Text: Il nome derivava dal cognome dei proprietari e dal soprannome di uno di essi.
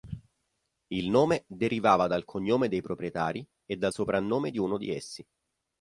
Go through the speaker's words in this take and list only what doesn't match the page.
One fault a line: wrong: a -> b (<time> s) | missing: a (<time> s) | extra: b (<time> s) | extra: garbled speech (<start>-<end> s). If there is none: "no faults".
no faults